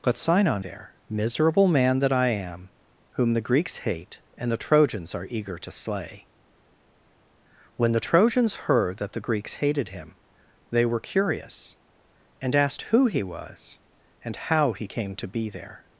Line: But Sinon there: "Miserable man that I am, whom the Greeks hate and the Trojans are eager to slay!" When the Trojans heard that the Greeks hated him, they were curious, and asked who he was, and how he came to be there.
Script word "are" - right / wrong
right